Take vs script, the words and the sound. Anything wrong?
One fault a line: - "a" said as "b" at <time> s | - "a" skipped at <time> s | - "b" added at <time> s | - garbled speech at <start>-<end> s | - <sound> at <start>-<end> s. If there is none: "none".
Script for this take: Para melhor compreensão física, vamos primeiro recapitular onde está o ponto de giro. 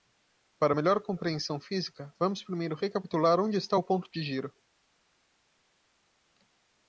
none